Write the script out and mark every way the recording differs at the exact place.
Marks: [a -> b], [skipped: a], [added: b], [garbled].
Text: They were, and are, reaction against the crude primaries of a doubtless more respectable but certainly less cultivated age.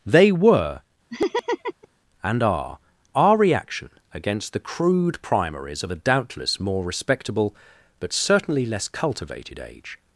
They were, and are, [added: our] reaction against the crude primaries of a doubtless more respectable but certainly less cultivated age.